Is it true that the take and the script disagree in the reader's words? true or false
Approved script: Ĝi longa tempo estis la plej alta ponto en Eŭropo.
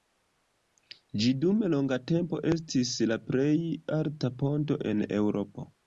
true